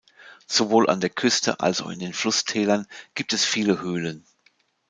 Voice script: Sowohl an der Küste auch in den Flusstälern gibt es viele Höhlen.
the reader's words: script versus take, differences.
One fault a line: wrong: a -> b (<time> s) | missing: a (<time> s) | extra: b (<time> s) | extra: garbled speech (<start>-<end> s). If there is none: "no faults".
extra: als (1.6 s)